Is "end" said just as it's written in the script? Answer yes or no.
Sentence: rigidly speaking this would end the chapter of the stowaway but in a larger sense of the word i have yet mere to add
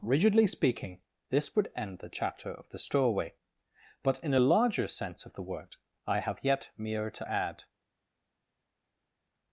yes